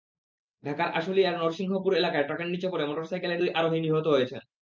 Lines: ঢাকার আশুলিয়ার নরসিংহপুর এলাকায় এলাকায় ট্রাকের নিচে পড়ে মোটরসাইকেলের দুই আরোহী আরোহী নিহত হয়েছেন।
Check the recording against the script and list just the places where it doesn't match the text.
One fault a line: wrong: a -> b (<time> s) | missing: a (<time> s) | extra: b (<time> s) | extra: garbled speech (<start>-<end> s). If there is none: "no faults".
missing: এলাকায় (2.3 s)
missing: আরোহী (3.8 s)